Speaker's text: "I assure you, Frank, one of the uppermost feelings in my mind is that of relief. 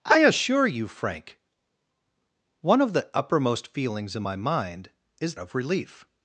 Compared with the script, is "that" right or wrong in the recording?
wrong